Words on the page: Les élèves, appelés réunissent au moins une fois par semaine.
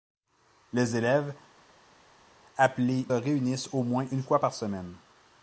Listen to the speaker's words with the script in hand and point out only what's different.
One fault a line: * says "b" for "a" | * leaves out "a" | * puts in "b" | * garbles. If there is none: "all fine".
all fine